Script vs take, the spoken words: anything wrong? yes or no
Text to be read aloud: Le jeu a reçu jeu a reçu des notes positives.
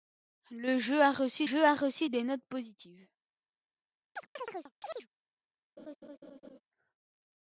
no